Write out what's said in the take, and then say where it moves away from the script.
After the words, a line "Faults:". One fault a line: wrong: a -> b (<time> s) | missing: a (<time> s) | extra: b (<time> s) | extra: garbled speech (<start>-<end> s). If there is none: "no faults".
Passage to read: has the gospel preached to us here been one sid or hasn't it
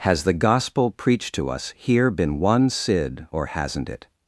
has the gospel preached to us here been one sid or hasn't it
Faults:
no faults